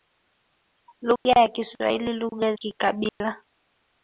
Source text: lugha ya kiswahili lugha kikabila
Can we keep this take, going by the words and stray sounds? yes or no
no